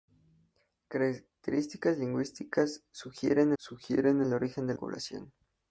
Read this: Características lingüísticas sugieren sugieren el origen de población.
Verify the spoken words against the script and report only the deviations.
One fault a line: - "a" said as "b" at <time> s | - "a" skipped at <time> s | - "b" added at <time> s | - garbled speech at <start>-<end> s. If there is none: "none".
none